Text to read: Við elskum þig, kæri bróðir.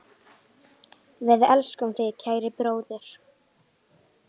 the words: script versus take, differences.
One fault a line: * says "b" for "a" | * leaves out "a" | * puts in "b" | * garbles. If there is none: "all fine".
all fine